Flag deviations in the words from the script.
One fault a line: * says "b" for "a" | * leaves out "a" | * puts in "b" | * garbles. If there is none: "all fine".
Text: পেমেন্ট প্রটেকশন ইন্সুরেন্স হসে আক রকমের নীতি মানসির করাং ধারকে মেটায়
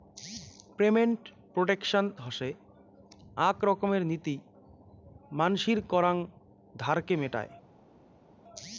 * leaves out "ইন্সুরেন্স"